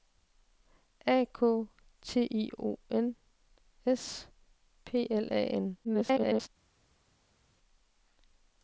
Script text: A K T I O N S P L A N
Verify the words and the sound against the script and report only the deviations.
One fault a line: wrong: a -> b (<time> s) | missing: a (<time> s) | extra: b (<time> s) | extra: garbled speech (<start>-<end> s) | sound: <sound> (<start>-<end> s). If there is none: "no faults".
extra: garbled speech (5.8-6.5 s)